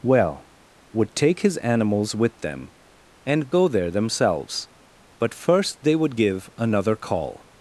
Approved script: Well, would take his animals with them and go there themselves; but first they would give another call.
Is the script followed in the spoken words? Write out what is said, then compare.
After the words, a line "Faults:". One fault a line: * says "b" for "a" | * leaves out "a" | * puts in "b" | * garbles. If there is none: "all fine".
Well, would take his animals with them and go there themselves; but first they would give another call.
Faults:
all fine